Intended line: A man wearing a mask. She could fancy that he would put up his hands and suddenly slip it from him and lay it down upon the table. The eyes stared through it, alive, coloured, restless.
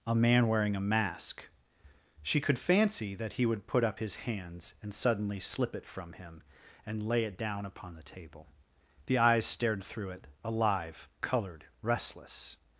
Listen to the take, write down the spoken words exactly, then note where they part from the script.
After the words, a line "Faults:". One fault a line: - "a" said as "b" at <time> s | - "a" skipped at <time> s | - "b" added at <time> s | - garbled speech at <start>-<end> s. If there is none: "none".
A man wearing a mask. She could fancy that he would put up his hands and suddenly slip it from him and lay it down upon the table. The eyes stared through it, alive, coloured, restless.
Faults:
none